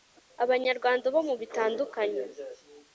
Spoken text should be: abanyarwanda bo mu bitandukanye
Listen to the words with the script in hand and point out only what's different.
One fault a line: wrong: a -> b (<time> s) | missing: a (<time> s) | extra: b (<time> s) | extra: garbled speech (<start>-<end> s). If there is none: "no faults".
no faults